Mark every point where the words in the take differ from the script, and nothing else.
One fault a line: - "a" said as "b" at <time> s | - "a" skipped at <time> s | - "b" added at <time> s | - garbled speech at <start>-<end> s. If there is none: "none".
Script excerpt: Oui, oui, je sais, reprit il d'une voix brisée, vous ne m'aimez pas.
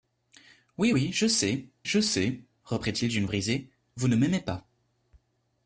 - "je sais" added at 1.8 s
- "voix" skipped at 3.3 s